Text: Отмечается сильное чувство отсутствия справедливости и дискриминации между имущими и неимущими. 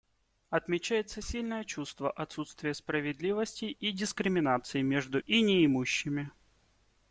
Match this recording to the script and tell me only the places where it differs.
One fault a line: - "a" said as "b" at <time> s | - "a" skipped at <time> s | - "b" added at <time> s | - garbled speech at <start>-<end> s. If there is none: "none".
- "имущими" skipped at 5.2 s